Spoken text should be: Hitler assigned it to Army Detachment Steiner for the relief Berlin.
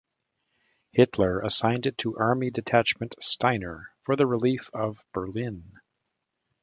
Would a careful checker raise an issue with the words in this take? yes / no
yes